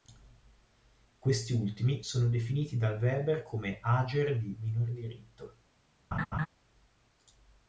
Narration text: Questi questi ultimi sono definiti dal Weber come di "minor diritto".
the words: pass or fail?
fail